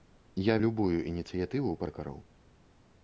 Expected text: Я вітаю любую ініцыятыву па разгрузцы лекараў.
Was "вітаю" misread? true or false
true